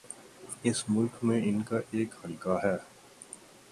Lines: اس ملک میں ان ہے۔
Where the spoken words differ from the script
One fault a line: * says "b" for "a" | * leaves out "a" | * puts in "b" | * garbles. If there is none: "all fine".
* puts in "کا ایک حلقہ"